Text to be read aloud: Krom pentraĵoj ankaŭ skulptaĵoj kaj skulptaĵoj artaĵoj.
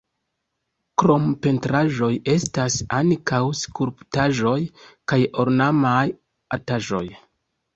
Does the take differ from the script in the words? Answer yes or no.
yes